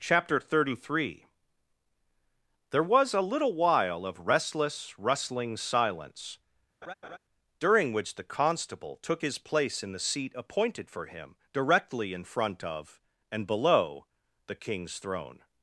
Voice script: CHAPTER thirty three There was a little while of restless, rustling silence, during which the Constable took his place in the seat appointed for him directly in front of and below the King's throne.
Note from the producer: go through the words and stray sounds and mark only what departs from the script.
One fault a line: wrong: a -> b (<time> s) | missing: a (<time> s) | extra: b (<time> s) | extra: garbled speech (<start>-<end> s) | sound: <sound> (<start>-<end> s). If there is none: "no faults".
sound: laugh (6.8-7.2 s)